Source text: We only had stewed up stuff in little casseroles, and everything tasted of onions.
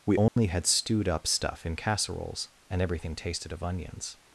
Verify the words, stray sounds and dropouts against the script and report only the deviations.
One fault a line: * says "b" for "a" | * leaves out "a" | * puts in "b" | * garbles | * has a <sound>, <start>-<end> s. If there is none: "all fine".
* has a dropout, 0.3-0.4 s
* leaves out "little"